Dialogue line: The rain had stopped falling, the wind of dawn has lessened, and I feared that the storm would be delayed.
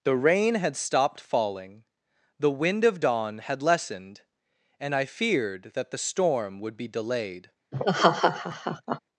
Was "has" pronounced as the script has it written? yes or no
no